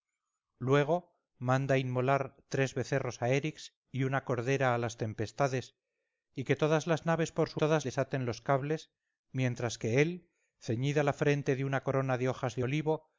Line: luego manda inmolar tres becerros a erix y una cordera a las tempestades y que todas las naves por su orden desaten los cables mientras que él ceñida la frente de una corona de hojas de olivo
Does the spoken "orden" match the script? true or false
false